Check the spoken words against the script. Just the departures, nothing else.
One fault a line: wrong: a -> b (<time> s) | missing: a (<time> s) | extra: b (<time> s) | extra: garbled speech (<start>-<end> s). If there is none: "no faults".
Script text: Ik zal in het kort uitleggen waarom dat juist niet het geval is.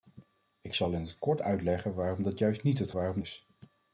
wrong: geval -> waarom (2.9 s)